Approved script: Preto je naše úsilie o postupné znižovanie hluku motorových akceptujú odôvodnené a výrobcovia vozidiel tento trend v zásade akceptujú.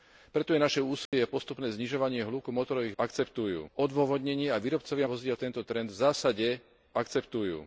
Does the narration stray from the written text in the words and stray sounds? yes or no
yes